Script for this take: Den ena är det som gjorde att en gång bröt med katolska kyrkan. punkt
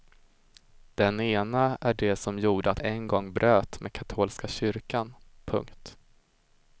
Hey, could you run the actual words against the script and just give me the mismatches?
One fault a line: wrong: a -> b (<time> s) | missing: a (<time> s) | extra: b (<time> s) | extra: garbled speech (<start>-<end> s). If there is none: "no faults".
no faults